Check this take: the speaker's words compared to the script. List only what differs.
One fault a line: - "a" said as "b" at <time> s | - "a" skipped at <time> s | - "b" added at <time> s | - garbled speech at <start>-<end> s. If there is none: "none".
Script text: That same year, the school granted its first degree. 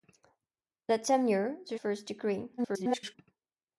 - "school granted its" skipped at 1.8 s
- garbled speech at 2.6-3.1 s